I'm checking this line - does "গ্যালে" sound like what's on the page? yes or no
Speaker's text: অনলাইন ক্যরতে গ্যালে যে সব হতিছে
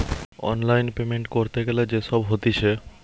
yes